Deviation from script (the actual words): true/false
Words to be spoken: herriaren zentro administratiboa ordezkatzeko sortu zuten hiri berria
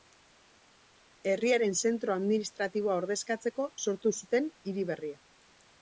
false